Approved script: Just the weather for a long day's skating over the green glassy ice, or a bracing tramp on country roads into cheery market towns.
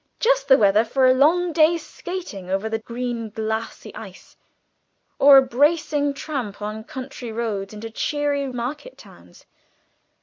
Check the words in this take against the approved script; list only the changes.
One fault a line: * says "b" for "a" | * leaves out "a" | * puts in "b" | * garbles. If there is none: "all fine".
all fine